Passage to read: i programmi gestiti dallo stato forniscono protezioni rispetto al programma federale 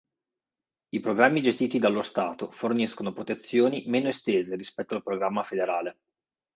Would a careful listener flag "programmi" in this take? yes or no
no